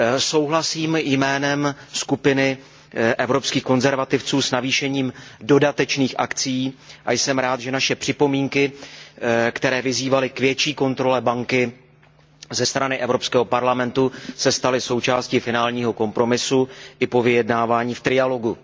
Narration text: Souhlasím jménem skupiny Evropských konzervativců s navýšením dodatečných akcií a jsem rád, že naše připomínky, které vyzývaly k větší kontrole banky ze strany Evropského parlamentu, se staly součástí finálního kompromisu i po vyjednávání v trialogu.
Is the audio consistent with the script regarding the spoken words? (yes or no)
yes